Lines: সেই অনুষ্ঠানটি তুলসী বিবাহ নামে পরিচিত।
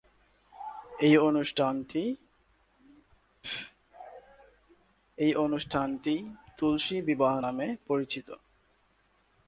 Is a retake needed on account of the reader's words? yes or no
yes